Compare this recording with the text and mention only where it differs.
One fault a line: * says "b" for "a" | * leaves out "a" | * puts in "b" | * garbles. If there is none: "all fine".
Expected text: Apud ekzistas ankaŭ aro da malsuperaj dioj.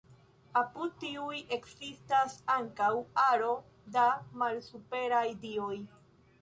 * puts in "tiuj"